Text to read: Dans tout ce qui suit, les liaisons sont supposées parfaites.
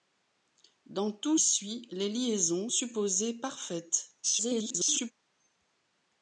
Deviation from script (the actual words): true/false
true